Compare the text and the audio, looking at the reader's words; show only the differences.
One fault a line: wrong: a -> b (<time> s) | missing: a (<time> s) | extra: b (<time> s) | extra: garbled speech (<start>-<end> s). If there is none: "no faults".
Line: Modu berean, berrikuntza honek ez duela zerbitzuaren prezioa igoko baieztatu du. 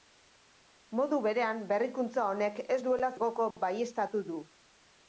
missing: zerbitzuaren prezioa (3.1 s)